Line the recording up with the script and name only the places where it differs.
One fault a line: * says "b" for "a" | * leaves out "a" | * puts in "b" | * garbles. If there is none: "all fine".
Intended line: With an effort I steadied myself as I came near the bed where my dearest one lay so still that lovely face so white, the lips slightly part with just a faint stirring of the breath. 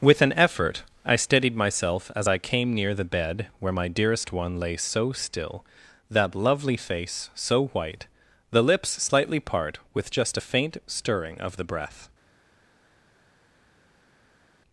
all fine